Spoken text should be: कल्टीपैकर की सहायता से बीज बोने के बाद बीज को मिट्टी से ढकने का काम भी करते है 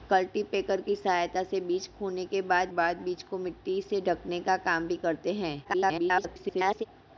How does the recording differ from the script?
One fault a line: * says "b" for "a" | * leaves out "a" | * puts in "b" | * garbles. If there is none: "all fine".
* puts in "बाद"
* garbles